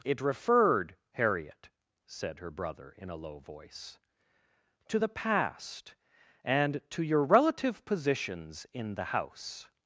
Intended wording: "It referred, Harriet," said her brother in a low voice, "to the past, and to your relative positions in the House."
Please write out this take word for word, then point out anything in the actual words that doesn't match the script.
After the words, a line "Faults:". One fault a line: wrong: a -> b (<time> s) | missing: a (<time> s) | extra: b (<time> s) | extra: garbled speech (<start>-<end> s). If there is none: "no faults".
"It referred, Harriet," said her brother in a low voice, "to the past, and to your relative positions in the House."
Faults:
no faults